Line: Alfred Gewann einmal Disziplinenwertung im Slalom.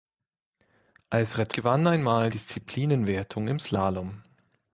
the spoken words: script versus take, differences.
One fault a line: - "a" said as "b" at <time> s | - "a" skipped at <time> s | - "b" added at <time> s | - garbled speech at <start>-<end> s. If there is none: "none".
none